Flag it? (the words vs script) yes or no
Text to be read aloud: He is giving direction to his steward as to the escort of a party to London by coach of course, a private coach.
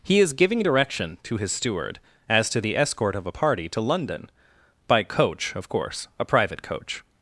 no